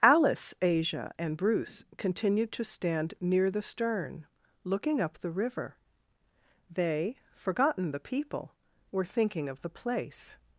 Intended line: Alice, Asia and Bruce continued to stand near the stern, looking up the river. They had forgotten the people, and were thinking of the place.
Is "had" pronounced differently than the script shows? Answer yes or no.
yes